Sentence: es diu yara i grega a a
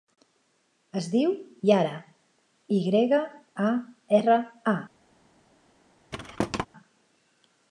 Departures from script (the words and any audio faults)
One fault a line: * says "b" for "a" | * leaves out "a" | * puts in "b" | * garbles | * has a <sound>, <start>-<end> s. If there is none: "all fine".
* puts in "erra"
* has a thud, 6.1-6.7 s